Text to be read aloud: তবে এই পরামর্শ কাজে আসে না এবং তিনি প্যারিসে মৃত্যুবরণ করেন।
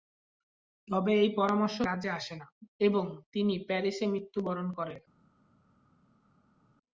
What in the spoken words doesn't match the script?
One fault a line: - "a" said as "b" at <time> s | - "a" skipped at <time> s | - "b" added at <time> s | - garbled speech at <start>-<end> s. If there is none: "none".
none